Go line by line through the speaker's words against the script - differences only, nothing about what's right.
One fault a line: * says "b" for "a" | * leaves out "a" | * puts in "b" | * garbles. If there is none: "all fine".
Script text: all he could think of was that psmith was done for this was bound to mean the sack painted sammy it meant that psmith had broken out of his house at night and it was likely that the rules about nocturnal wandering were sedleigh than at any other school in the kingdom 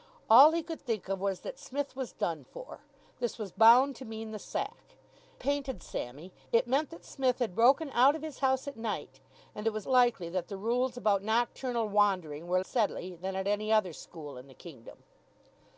all fine